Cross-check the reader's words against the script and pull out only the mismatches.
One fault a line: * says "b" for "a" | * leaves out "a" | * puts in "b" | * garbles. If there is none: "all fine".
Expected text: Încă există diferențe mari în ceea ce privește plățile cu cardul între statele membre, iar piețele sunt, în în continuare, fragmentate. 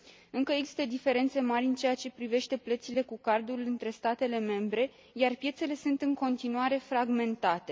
* leaves out "în"